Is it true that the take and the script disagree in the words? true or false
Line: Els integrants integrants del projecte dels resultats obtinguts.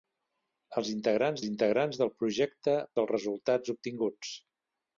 false